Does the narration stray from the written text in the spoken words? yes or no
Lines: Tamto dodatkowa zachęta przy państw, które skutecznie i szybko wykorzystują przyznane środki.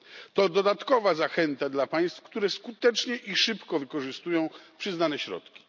yes